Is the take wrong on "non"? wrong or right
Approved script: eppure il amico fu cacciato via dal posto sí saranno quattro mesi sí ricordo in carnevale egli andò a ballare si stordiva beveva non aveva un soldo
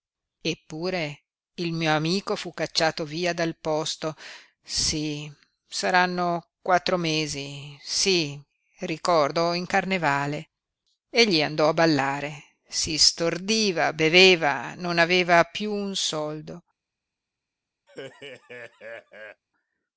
right